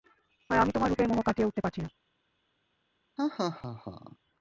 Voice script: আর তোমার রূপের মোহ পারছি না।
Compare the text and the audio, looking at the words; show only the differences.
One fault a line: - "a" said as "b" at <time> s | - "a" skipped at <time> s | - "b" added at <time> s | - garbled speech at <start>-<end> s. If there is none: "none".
- "আমি" added at 0.6 s
- "কাটিয়ে উঠতে" added at 1.2 s